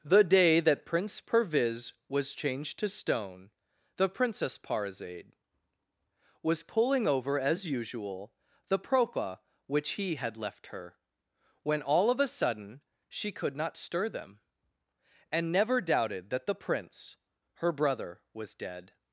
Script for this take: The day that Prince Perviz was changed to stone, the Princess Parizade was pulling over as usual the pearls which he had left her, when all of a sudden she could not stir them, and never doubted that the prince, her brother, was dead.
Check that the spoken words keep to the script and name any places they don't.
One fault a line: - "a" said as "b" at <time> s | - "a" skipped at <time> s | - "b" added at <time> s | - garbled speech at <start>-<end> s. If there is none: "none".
- "pearls" said as "propa" at 8.8 s